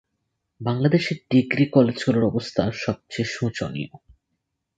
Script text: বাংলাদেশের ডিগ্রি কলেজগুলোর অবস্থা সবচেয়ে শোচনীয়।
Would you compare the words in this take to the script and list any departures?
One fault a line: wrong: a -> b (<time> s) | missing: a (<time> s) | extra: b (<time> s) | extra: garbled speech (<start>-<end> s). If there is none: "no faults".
no faults